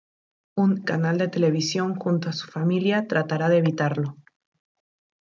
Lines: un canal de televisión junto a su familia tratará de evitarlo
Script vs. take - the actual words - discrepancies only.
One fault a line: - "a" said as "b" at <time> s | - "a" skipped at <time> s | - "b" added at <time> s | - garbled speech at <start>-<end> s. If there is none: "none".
none